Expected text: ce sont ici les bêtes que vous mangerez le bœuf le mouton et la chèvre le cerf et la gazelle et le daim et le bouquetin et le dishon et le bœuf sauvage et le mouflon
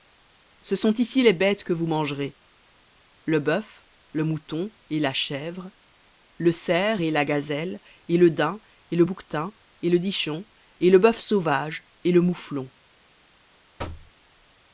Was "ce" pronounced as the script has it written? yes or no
yes